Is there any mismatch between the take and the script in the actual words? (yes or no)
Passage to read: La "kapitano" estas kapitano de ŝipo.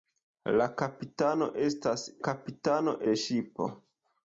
no